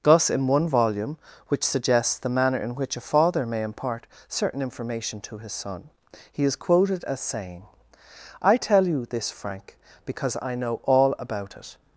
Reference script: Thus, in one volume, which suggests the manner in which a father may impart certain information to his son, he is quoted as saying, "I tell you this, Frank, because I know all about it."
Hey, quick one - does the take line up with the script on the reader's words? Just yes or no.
yes